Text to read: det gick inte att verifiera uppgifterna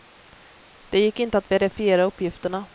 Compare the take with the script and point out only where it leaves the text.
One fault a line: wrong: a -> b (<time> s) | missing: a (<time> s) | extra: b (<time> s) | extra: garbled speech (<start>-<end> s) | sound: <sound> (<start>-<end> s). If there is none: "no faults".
no faults